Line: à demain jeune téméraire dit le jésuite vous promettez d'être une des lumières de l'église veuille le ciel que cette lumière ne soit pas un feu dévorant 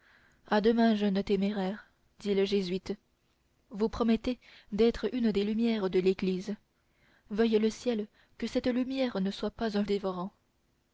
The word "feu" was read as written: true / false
false